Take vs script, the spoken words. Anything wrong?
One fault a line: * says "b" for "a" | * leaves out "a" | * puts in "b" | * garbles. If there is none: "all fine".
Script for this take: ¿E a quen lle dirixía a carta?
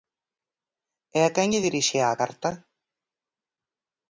all fine